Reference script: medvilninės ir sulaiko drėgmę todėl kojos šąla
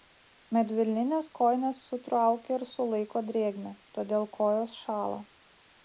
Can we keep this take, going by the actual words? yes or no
no